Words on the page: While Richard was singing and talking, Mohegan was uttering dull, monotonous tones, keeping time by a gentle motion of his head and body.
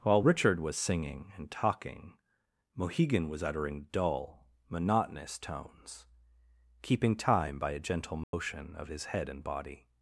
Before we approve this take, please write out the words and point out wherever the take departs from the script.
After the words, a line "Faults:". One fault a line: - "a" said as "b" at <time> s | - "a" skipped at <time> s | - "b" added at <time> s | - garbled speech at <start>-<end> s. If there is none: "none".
While Richard was singing and talking, Mohegan was uttering dull, monotonous tones, keeping time by a gentle motion of his head and body.
Faults:
none